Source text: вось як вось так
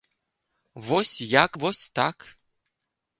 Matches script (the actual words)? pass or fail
pass